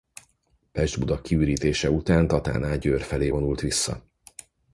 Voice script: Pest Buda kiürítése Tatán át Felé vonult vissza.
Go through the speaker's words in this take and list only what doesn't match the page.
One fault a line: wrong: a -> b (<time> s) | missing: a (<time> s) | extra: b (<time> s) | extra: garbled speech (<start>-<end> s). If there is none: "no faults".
extra: után (1.9 s)
extra: Győr (2.8 s)